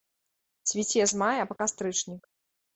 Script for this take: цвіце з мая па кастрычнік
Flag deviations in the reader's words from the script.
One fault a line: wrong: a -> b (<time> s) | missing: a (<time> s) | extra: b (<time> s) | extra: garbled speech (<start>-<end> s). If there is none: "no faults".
no faults